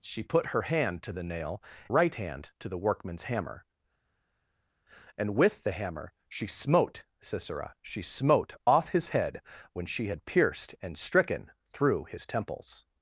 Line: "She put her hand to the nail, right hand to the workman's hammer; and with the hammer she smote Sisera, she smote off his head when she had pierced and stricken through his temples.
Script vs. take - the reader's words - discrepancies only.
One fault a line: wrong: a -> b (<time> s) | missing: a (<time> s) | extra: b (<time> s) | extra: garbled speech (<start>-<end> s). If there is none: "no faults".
no faults